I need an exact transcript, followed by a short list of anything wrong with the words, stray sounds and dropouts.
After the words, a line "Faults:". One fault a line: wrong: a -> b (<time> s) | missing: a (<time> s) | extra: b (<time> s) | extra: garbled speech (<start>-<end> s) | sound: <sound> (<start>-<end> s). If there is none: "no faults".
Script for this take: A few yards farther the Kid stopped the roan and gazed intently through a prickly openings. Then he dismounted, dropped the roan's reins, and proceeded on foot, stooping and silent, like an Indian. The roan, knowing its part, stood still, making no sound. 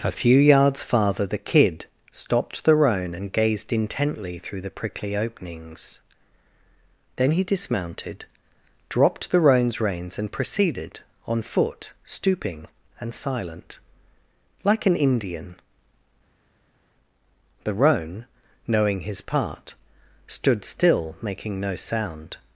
A few yards farther the Kid stopped the roan and gazed intently through the prickly openings. Then he dismounted, dropped the roan's reins, and proceeded on foot, stooping and silent, like an Indian. The roan, knowing his part, stood still, making no sound.
Faults:
wrong: a -> the (4.6 s)
wrong: its -> his (19.0 s)